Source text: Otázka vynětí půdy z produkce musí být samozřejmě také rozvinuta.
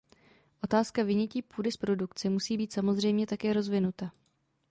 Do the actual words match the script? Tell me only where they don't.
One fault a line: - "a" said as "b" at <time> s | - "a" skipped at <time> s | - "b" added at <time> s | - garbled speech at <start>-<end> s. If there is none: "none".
none